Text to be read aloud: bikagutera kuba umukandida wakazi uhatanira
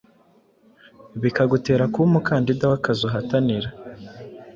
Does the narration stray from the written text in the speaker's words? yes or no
no